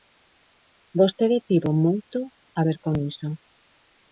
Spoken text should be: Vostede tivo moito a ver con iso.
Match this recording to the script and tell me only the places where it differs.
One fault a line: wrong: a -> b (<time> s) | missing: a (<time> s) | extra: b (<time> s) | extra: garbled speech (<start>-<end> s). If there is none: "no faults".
no faults